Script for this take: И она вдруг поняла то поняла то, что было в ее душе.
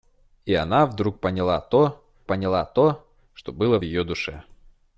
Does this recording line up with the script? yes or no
yes